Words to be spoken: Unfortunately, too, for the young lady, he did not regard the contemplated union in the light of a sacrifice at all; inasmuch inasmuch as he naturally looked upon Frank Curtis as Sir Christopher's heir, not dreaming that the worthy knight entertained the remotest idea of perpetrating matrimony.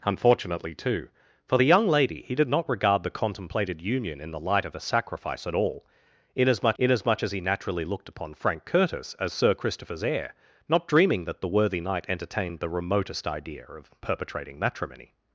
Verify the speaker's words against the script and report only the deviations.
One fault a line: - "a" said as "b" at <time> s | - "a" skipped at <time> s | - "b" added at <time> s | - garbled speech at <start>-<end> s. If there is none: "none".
none